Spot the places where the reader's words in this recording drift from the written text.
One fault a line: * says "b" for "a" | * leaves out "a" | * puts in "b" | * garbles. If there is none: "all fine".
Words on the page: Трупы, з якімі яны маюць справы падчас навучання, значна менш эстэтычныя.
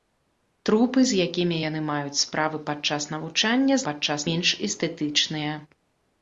* says "падчас" for "значна"